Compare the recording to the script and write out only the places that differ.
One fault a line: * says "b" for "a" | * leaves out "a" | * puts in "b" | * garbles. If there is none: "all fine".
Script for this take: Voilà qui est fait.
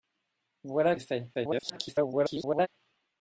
* leaves out "qui"
* garbles